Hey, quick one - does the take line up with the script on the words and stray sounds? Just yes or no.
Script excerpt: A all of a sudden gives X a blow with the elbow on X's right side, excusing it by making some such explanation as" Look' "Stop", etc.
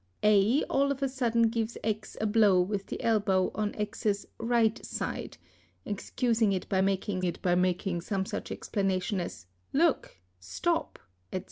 no